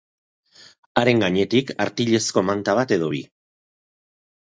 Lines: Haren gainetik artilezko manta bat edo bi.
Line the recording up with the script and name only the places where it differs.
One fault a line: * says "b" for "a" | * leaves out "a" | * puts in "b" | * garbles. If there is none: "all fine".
all fine